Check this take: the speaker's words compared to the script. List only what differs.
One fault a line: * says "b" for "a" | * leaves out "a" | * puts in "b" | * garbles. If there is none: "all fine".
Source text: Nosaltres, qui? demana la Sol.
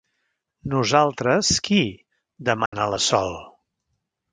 all fine